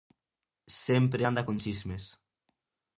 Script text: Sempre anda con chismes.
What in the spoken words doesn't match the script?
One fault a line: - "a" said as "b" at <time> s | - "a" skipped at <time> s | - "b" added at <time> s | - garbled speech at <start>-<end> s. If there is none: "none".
none